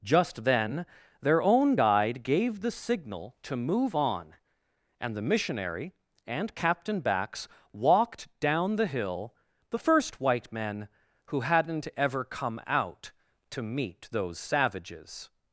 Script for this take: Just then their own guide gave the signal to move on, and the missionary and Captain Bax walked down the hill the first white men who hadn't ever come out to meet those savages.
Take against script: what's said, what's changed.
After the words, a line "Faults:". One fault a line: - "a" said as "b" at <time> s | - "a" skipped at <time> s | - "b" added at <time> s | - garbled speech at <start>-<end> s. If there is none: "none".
Just then their own guide gave the signal to move on, and the missionary and Captain Bax walked down the hill the first white men who hadn't ever come out to meet those savages.
Faults:
none